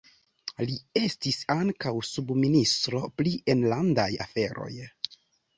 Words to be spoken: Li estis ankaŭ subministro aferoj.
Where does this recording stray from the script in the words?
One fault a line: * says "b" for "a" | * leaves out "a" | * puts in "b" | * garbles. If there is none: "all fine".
* puts in "pri enlandaj"